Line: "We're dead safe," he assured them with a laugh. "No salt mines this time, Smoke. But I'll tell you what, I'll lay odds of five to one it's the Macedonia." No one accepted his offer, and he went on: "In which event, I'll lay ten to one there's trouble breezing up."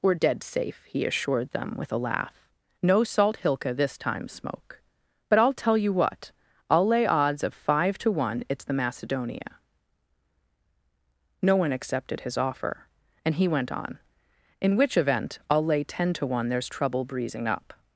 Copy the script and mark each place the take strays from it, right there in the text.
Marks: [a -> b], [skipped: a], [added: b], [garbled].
"We're dead safe," he assured them with a laugh. "No salt [mines -> hilka] this time, Smoke. But I'll tell you what, I'll lay odds of five to one it's the Macedonia." No one accepted his offer, and he went on: "In which event, I'll lay ten to one there's trouble breezing up."